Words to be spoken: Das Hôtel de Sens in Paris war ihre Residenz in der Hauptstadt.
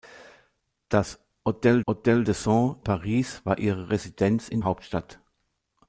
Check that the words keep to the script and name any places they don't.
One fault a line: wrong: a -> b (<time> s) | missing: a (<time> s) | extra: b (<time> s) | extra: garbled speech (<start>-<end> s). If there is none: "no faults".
extra: Hôtel (1.9 s)
missing: in (2.8 s)
missing: der (4.6 s)